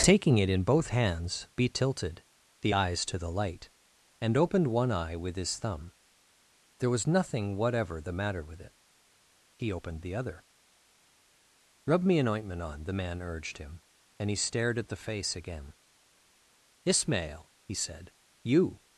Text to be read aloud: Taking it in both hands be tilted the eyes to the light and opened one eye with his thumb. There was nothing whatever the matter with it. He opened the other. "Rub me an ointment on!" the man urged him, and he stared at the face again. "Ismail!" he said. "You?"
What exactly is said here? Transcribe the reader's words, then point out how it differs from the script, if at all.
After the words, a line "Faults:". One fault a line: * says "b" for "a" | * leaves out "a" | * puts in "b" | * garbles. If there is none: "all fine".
Taking it in both hands be tilted the eyes to the light and opened one eye with his thumb. There was nothing whatever the matter with it. He opened the other. "Rub me an ointment on!" the man urged him, and he stared at the face again. "Ismail!" he said. "You?"
Faults:
all fine